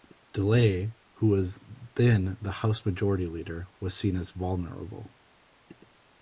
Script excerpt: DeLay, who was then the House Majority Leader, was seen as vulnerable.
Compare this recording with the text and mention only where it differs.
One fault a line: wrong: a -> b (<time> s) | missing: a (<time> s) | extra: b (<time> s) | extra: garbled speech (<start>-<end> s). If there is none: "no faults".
no faults